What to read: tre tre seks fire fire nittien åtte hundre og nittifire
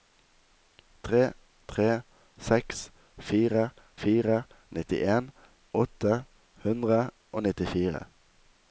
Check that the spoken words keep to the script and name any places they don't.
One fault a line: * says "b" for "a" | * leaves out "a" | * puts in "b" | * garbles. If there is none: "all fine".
all fine